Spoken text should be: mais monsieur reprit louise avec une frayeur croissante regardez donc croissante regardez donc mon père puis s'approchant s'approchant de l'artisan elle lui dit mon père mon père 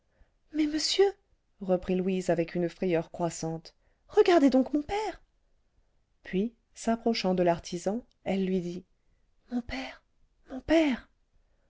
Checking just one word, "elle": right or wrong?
right